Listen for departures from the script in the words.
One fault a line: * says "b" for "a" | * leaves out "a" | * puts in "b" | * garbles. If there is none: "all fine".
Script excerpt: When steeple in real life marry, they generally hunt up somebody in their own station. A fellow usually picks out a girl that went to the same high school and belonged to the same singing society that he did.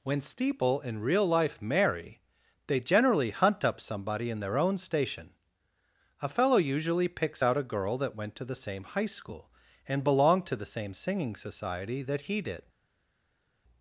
all fine